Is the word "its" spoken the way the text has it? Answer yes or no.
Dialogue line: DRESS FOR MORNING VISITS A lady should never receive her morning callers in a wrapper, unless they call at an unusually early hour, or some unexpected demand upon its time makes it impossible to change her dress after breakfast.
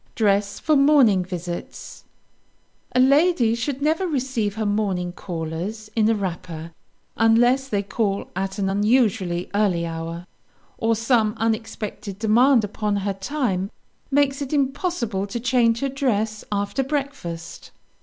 no